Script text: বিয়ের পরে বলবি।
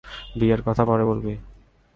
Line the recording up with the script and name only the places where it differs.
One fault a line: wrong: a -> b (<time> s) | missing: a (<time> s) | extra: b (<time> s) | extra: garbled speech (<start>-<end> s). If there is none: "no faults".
extra: কথা (0.7 s)